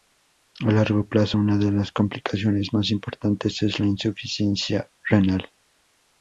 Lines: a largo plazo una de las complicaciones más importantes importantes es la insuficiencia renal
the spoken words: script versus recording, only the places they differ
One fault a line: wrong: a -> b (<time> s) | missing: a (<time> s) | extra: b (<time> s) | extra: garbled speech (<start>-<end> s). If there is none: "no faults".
missing: importantes (3.6 s)